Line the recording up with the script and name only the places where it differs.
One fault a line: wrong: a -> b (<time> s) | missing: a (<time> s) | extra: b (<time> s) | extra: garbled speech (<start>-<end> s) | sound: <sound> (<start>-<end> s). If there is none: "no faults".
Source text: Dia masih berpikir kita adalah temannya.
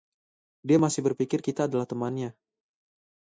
no faults